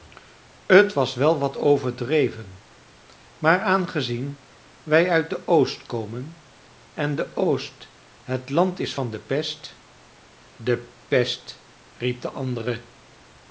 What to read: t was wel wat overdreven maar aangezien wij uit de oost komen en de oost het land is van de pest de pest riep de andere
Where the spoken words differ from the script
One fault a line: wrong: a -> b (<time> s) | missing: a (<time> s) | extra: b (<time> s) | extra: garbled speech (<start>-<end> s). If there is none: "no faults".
no faults